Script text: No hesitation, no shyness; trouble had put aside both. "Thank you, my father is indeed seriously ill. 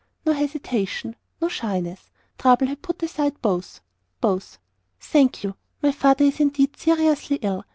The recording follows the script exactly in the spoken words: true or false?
false